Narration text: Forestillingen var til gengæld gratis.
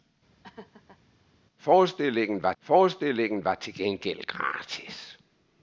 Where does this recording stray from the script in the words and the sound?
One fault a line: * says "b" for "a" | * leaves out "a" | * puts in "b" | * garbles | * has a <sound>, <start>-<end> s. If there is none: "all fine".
* has a laugh, 0.4-1.0 s
* puts in "forestillingen var"